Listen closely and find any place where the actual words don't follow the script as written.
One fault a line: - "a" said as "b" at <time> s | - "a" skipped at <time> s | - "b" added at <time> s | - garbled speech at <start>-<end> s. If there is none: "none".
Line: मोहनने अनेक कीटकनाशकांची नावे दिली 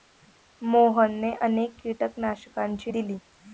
- "नावे" skipped at 2.9 s